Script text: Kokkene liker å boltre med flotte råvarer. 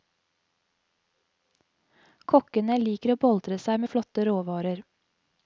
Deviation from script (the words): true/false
true